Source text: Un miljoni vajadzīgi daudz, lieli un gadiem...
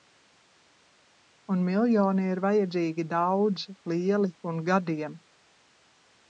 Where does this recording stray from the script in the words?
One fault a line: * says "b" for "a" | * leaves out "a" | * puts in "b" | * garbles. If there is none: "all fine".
* puts in "ir"